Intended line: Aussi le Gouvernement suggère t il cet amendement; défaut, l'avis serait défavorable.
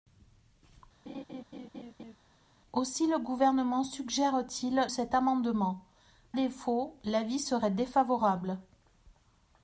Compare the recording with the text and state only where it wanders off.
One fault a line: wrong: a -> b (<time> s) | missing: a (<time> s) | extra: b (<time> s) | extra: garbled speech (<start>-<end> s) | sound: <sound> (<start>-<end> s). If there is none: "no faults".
sound: laugh (1.1-2.2 s)